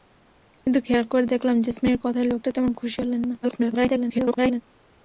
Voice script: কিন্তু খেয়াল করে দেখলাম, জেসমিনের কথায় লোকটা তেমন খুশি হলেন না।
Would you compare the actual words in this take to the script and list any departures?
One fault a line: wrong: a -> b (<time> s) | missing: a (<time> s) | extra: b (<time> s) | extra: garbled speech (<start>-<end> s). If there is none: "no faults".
extra: garbled speech (3.4-4.6 s)